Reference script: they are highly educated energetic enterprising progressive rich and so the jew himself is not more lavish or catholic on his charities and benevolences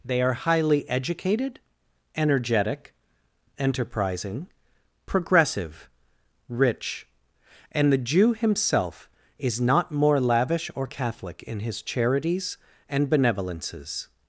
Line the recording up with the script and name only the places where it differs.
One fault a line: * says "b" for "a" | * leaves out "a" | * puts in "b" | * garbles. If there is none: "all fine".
* leaves out "so"
* says "in" for "on"